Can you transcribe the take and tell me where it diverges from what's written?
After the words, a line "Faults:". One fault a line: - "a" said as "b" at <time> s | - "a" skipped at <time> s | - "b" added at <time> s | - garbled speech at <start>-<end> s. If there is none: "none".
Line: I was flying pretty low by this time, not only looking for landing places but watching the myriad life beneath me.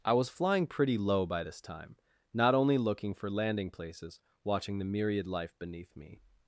I was flying pretty low by this time, not only looking for landing places watching the myriad life beneath me.
Faults:
- "but" skipped at 4.2 s